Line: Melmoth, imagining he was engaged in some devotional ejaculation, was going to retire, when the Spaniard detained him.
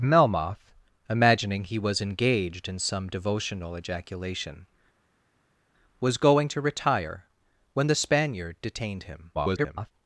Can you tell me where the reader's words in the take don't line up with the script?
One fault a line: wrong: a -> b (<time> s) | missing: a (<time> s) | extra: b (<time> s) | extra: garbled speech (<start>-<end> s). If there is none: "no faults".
extra: garbled speech (9.3-9.9 s)